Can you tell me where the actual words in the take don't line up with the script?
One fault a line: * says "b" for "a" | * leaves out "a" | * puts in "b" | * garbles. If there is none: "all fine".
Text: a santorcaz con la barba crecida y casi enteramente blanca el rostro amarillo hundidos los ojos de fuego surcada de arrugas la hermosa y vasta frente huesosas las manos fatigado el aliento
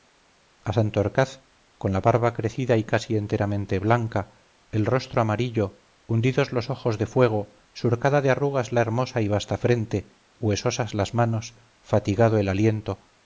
all fine